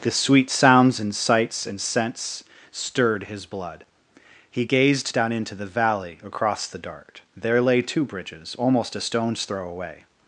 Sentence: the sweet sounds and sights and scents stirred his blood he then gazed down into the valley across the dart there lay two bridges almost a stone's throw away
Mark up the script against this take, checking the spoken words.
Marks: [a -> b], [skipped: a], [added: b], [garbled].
the sweet sounds and sights and scents stirred his blood he [skipped: then] gazed down into the valley across the dart there lay two bridges almost a stone's throw away